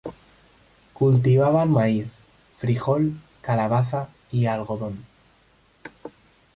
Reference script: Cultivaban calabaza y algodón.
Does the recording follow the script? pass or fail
fail